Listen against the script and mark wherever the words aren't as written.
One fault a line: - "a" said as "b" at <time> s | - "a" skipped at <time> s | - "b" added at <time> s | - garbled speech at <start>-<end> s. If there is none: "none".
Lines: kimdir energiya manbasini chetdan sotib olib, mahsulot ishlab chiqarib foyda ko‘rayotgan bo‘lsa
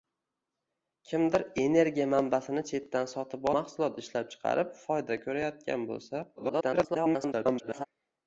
- "olib" skipped at 3.5 s
- garbled speech at 6.4-7.8 s